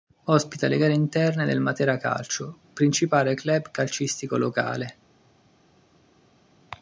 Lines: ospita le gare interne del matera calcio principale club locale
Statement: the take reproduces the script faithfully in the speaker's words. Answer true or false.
false